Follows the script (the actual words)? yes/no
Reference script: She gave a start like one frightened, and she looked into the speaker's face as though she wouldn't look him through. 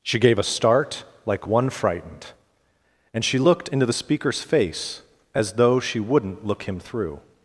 yes